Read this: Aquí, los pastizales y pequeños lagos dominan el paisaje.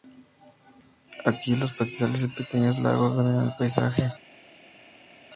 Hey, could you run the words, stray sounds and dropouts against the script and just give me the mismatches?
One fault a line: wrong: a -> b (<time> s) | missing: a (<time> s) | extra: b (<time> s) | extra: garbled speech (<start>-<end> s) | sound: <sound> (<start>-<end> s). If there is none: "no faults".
no faults